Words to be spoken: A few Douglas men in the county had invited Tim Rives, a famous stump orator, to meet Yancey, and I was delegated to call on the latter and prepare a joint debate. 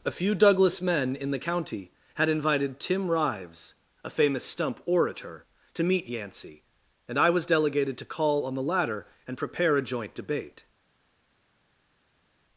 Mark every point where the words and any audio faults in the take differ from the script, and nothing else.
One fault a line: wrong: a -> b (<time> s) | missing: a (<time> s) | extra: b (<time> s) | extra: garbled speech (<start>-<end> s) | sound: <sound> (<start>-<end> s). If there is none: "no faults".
no faults